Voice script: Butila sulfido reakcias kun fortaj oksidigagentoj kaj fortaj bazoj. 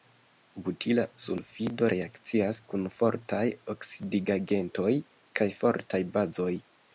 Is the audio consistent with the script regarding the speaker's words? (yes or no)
yes